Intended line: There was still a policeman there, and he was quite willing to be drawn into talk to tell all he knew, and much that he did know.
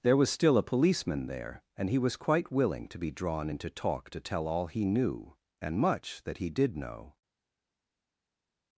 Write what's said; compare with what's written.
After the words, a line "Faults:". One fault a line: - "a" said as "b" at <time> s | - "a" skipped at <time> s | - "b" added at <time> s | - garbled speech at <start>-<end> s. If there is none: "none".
There was still a policeman there, and he was quite willing to be drawn into talk to tell all he knew, and much that he did know.
Faults:
none